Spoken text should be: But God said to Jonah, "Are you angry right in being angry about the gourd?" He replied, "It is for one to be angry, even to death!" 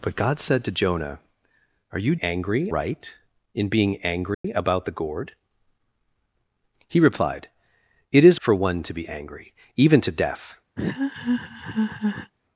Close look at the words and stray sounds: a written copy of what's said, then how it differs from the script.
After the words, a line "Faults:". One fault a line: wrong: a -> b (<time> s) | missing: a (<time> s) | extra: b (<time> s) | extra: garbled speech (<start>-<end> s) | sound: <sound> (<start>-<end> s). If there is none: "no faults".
But God said to Jonah, "Are you angry right in being angry about the gourd?" He replied, "It is for one to be angry, even to death!"
Faults:
sound: dropout (4.3-4.4 s)
sound: laugh (10.8-12.3 s)